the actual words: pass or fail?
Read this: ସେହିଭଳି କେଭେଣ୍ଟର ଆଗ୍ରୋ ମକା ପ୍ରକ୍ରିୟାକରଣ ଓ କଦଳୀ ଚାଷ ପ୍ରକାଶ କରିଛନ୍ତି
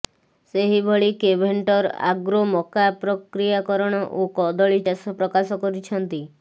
pass